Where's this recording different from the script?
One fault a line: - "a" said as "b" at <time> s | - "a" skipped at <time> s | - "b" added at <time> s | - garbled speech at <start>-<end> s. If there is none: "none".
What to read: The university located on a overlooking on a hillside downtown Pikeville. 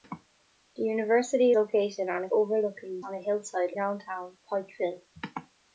none